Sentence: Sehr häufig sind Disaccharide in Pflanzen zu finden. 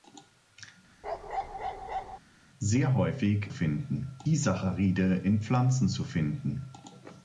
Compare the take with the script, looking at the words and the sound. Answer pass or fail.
fail